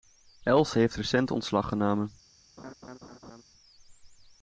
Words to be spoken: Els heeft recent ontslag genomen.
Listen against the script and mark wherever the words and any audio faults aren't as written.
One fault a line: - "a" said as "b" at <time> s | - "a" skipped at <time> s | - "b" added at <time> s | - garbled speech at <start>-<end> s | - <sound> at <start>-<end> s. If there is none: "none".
- laugh at 2.6-3.4 s